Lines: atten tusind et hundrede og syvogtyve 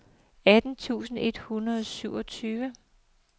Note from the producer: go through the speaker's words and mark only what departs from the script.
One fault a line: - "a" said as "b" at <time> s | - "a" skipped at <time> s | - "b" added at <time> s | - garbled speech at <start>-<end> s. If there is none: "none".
none